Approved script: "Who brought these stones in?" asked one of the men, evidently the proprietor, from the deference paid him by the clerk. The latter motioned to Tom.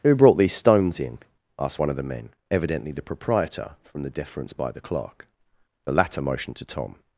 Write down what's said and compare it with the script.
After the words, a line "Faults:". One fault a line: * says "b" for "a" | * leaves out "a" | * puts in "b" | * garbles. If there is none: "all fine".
"Who brought these stones in?" asked one of the men, evidently the proprietor, from the deference by the clerk. The latter motioned to Tom.
Faults:
* leaves out "paid him"